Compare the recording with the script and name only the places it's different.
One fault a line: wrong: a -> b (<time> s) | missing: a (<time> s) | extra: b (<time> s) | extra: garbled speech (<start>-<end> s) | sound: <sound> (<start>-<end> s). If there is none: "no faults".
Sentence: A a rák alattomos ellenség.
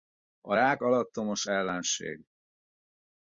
missing: a (0.6 s)